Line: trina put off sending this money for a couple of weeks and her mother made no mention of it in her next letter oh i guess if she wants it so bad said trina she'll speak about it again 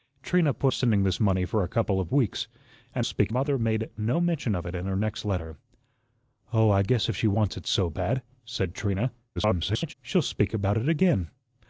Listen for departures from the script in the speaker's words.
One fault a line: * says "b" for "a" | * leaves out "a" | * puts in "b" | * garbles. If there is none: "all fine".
* leaves out "off"
* says "speak" for "her"
* garbles